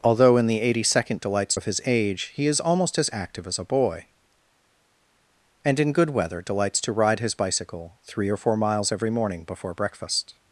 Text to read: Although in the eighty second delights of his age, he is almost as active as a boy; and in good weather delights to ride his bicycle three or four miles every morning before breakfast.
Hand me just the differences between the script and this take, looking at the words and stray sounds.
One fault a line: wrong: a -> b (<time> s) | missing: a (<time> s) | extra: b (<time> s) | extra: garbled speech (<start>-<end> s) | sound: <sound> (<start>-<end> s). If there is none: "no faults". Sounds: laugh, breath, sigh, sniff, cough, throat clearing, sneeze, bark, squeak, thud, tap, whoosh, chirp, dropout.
no faults